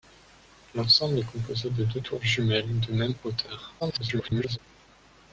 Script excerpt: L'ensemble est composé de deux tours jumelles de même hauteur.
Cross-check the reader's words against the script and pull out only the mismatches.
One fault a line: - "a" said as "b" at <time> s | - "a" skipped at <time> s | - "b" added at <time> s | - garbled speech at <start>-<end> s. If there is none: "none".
- garbled speech at 3.8-4.6 s